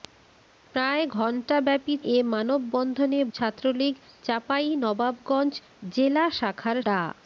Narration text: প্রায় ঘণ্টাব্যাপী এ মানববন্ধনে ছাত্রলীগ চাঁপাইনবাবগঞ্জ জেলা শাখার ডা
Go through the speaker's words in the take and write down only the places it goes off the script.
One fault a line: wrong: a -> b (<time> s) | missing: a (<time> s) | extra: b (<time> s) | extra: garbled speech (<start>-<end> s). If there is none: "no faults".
no faults